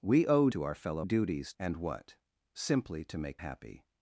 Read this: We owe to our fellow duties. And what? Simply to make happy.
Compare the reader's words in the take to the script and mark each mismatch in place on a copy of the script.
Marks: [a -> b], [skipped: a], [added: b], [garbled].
We owe to our fellow duties. And what? Simply to make happy.